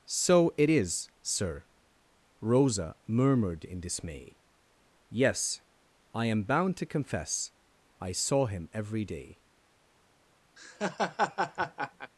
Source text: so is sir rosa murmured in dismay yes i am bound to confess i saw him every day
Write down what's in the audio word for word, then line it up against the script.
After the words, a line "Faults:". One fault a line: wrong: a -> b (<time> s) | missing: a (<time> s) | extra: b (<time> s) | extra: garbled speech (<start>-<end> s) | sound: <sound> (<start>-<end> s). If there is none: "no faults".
so it is sir rosa murmured in dismay yes i am bound to confess i saw him every day
Faults:
extra: it (0.6 s)
sound: laugh (10.6-12.1 s)